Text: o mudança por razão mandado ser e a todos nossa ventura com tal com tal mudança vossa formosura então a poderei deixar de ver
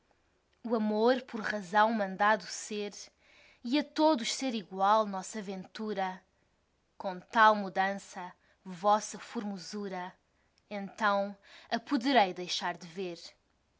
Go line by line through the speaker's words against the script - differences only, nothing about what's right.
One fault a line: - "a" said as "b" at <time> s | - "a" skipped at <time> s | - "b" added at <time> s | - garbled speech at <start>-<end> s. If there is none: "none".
- "mudança" said as "amor" at 0.8 s
- "ser igual" added at 4.3 s
- "com tal" skipped at 7.6 s